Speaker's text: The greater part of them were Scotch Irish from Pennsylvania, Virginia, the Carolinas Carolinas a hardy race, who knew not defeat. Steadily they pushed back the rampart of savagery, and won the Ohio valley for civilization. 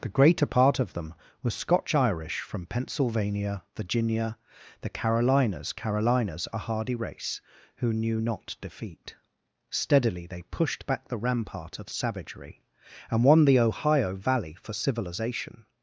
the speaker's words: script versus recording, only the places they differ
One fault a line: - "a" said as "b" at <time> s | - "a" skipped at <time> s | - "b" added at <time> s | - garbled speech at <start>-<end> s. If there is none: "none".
none